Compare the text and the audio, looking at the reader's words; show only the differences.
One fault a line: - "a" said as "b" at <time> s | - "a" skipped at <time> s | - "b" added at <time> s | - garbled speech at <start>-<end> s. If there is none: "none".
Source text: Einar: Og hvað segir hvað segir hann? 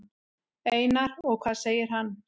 - "hvað segir" skipped at 1.9 s